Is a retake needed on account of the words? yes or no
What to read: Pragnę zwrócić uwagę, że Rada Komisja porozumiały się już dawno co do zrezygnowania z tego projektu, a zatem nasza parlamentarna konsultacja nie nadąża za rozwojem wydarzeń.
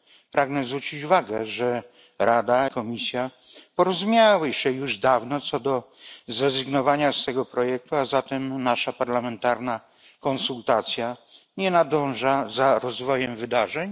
no